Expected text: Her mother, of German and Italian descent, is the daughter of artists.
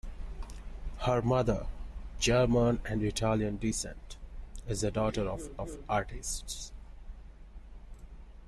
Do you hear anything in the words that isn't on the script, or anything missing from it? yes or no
yes